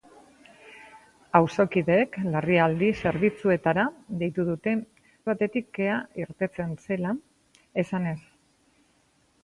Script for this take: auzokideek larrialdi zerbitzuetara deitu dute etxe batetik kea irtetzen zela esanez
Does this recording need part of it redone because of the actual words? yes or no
yes